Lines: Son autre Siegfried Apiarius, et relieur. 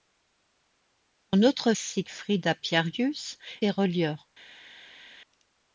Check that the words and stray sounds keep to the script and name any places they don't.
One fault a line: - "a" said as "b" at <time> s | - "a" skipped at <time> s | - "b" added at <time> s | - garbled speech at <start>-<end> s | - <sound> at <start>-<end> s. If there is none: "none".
none